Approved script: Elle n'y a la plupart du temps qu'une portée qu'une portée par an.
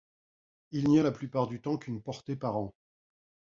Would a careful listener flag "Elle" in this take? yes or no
yes